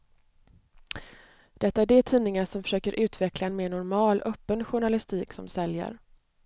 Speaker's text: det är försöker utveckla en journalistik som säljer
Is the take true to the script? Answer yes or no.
no